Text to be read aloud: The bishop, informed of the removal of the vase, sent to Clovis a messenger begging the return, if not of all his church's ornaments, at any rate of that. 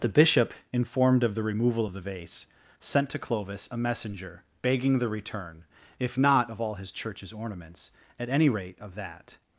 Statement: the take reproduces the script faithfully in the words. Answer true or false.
true